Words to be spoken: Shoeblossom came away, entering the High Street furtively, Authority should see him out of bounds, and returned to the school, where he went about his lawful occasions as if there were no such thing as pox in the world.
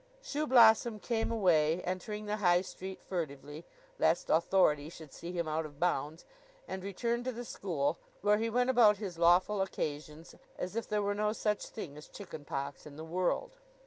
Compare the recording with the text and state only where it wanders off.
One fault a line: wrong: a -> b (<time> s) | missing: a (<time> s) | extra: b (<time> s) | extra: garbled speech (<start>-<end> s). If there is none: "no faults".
extra: lest (4.0 s)
extra: chicken (12.1 s)